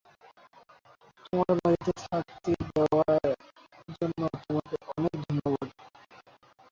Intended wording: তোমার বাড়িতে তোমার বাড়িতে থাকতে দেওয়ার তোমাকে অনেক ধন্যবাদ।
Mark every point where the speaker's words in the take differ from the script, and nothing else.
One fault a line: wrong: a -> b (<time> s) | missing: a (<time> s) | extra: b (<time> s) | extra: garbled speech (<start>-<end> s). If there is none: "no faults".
missing: তোমার বাড়িতে (1.9 s)
extra: জন্য (3.9 s)